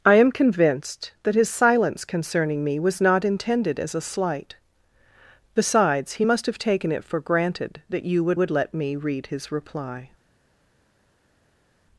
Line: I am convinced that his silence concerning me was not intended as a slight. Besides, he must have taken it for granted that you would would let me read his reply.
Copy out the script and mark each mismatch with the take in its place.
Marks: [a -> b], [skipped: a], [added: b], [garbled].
I am convinced that his silence concerning me was not intended as a slight. Besides, he must have taken it for granted that you would would let me read his reply.